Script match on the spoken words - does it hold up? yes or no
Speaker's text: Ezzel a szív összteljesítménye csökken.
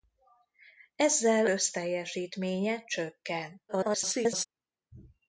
no